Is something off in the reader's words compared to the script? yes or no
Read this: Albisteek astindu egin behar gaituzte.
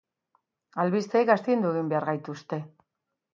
no